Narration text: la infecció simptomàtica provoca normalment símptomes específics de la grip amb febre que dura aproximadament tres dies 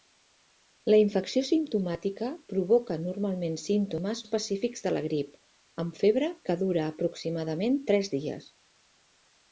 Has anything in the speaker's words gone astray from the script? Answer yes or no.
no